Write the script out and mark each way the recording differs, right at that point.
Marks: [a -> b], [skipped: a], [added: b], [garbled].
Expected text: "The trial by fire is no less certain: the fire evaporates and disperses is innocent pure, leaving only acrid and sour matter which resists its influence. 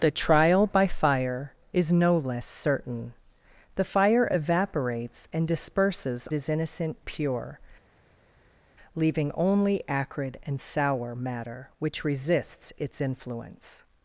"The trial by fire is no less certain: the fire evaporates and disperses is innocent pure, leaving only acrid and sour matter which resists its influence.